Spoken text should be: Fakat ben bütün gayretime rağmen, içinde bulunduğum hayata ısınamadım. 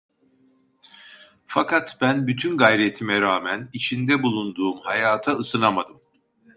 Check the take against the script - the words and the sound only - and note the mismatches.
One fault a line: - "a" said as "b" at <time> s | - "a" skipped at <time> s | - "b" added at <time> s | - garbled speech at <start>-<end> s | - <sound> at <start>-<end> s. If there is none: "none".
none